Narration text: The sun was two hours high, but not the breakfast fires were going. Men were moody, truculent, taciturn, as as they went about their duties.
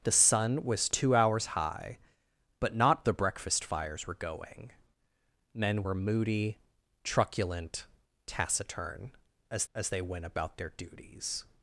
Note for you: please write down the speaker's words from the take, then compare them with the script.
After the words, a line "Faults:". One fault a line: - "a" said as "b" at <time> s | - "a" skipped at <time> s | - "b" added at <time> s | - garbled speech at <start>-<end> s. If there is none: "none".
The sun was two hours high, but not the breakfast fires were going. Men were moody, truculent, taciturn, as as they went about their duties.
Faults:
none